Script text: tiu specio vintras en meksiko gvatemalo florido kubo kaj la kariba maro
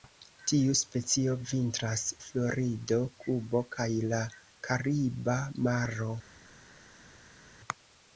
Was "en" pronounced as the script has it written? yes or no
no